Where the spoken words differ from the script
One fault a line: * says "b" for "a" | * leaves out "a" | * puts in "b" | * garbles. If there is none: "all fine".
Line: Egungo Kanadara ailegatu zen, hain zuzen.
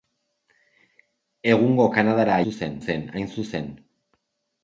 * says "zuzen" for "ailegatu"